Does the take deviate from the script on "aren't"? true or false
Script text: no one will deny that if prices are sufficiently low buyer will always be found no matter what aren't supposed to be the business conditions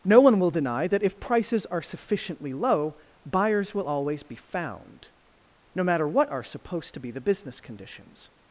true